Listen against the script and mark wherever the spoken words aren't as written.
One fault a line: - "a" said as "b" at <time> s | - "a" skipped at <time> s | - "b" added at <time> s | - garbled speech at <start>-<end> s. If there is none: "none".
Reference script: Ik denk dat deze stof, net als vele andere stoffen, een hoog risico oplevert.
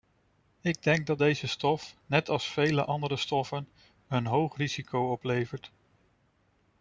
none